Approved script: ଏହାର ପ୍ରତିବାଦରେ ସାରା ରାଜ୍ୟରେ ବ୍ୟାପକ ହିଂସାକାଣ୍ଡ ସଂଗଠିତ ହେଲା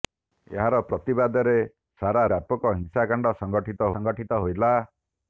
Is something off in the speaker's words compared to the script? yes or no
yes